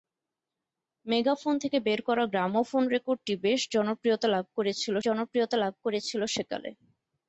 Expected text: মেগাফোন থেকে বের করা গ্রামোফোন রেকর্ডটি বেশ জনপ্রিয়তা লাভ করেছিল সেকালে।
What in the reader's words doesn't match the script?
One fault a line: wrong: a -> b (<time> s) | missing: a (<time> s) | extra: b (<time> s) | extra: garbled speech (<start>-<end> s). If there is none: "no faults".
extra: জনপ্রিয়তা লাভ করেছিল (5.0 s)